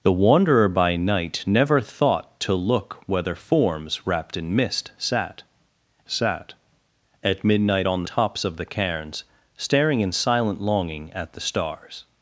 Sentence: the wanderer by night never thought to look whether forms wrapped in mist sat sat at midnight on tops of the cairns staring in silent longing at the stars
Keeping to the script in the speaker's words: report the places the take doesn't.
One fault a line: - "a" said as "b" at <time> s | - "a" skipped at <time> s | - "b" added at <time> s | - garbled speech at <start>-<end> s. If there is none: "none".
none